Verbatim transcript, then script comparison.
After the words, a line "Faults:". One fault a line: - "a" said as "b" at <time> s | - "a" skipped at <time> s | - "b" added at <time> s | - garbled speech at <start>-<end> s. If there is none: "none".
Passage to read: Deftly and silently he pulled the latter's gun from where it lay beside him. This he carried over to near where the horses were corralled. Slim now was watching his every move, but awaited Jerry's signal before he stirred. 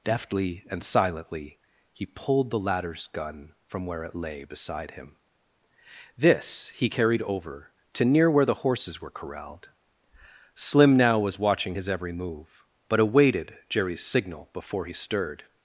Deftly and silently he pulled the latter's gun from where it lay beside him. This he carried over to near where the horses were corralled. Slim now was watching his every move, but awaited Jerry's signal before he stirred.
Faults:
none